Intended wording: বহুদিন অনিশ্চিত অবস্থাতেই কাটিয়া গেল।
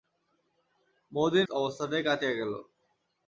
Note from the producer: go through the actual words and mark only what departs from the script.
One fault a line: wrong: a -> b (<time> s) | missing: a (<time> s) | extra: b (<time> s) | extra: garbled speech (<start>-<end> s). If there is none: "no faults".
missing: অনিশ্চিত (1.5 s)